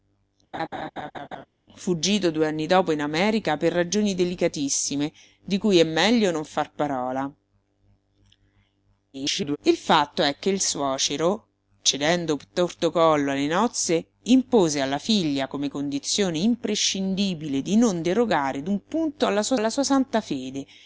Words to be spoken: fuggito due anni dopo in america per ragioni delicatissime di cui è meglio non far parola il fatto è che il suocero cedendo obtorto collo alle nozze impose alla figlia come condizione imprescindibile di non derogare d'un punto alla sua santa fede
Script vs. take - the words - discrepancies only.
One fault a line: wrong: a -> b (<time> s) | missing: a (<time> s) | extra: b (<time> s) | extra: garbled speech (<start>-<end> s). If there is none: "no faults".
extra: garbled speech (9.1-9.6 s)
extra: alla sua (19.5 s)